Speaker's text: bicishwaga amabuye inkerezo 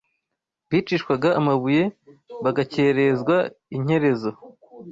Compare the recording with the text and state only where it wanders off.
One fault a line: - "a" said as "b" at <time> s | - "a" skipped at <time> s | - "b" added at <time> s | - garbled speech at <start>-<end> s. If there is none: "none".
- "bagakerezwa" added at 2.4 s